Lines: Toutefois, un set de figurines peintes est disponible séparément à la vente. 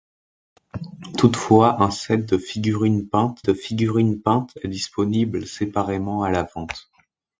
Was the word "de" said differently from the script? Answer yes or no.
no